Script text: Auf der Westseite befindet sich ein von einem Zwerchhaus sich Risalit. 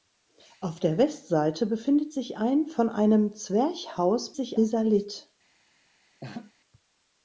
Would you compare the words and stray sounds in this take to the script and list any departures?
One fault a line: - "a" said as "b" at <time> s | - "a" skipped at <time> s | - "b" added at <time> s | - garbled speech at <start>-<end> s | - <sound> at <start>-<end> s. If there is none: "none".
- laugh at 6.2-6.5 s